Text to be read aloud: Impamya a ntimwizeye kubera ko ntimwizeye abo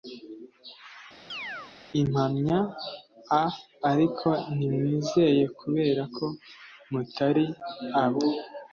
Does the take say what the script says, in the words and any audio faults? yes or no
no